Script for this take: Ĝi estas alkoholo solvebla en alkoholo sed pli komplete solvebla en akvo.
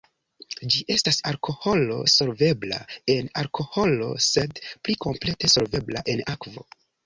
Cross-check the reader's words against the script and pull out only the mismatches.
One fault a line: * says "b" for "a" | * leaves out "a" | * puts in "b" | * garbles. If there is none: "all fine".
all fine